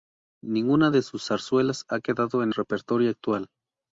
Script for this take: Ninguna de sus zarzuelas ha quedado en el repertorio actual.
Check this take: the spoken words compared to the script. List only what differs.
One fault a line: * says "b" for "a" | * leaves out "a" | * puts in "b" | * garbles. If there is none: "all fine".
* leaves out "el"